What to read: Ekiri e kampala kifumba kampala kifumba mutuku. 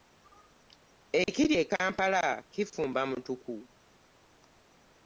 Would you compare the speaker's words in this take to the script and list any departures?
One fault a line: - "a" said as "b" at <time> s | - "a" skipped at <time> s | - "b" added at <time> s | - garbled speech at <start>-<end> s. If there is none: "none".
- "kampala kifumba" skipped at 3.0 s